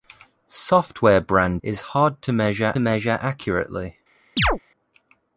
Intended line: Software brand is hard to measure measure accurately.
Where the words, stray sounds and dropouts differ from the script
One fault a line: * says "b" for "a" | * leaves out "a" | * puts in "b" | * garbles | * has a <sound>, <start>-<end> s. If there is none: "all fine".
* has a chirp, 4.4-4.6 s